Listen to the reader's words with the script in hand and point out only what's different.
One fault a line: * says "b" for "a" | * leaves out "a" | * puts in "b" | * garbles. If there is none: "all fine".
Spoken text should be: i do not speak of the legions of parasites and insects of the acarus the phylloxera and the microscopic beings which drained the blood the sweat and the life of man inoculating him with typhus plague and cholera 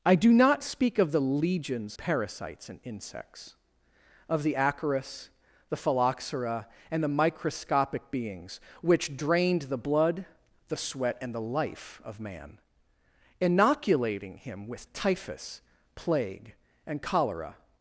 * leaves out "of"